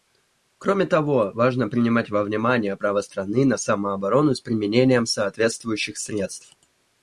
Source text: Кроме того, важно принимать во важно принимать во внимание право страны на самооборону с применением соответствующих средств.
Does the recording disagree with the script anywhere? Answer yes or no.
yes